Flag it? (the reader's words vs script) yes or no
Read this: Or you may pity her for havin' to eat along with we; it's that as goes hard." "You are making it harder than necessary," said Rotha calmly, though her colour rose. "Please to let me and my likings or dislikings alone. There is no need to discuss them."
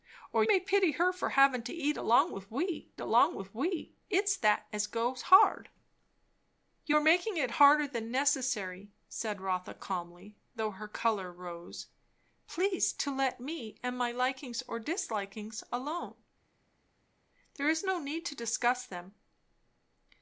yes